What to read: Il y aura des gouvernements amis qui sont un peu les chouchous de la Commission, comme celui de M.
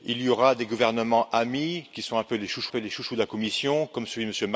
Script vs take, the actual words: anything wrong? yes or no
yes